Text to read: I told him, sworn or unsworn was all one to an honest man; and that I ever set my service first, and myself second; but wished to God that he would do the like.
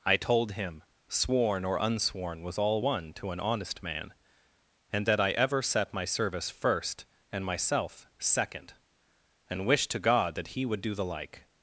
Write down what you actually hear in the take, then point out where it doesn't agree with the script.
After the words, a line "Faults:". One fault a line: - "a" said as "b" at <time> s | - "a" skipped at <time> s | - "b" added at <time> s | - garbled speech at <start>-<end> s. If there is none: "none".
I told him, sworn or unsworn was all one to an honest man; and that I ever set my service first, and myself second; and wished to God that he would do the like.
Faults:
- "but" said as "and" at 9.5 s